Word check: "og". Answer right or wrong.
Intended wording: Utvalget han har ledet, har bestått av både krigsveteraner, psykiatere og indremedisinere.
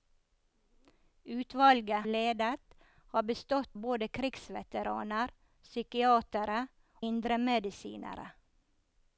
wrong